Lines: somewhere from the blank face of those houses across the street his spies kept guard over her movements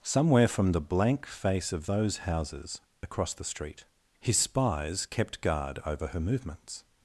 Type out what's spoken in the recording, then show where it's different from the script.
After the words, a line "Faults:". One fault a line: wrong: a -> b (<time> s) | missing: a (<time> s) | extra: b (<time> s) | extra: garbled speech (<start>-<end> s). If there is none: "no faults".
somewhere from the blank face of those houses across the street his spies kept guard over her movements
Faults:
no faults